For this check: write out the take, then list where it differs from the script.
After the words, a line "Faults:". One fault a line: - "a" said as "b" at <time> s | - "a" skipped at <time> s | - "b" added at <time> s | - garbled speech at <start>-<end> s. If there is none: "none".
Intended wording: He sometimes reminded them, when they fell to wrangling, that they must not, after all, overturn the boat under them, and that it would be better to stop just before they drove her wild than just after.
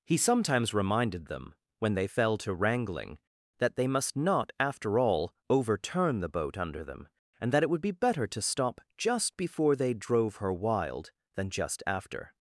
He sometimes reminded them, when they fell to wrangling, that they must not, after all, overturn the boat under them, and that it would be better to stop just before they drove her wild than just after.
Faults:
none